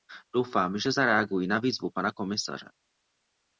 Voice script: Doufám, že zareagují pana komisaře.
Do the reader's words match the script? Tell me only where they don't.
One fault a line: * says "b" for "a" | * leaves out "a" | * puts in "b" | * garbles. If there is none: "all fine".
* puts in "na výzvu"